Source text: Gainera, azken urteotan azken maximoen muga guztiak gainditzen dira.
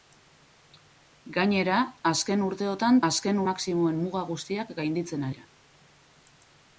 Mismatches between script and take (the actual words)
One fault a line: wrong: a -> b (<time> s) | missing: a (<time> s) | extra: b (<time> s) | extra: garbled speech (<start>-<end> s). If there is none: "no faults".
no faults